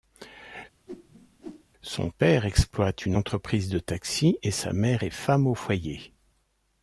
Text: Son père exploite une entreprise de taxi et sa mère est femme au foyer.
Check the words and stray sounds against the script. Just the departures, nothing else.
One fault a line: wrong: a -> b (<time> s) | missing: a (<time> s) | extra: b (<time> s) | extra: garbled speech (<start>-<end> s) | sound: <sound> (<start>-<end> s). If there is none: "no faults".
sound: whoosh (0.9-1.6 s)